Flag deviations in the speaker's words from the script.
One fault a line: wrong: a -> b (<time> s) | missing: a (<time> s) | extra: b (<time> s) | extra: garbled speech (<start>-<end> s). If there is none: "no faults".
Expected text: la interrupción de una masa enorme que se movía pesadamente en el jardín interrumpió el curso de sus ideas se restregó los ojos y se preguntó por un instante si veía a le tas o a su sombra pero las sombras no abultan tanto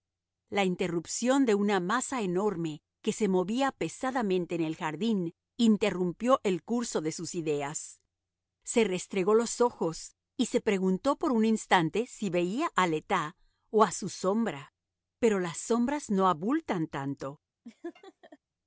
no faults